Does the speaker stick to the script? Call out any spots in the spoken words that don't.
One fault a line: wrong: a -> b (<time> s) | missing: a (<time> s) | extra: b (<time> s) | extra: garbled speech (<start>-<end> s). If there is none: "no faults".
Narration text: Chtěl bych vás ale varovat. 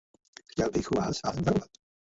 no faults